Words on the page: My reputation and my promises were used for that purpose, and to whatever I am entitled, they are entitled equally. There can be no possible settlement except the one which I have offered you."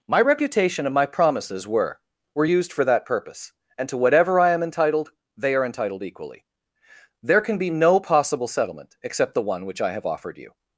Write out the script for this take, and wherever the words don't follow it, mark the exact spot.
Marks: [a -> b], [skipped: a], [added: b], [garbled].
My reputation and my promises were [added: were] used for that purpose, and to whatever I am entitled, they are entitled equally. There can be no possible settlement except the one which I have offered you."